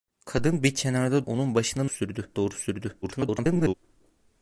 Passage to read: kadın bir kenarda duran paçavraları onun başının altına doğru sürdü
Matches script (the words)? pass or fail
fail